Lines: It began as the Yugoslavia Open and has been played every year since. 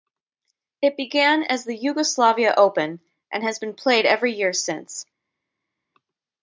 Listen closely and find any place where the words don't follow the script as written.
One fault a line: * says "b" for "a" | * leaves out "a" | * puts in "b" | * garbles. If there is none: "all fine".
all fine